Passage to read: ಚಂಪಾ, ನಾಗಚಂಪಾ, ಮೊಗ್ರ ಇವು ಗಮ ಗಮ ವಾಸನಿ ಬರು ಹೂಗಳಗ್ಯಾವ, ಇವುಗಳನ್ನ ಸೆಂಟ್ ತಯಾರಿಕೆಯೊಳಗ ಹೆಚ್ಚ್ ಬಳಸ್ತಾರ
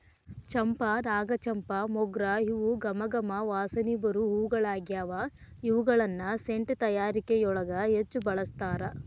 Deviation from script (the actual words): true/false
false